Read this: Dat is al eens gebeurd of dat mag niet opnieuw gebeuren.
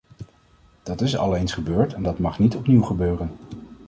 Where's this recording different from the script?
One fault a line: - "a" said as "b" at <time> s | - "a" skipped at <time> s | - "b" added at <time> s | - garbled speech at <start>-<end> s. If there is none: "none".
- "of" said as "en" at 1.9 s